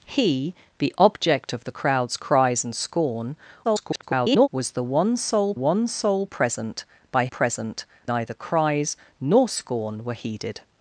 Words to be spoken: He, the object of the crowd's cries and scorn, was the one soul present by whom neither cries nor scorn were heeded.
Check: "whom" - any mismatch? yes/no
yes